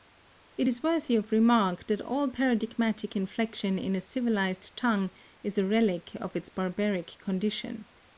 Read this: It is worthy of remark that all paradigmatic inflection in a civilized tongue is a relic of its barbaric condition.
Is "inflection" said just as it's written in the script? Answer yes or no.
yes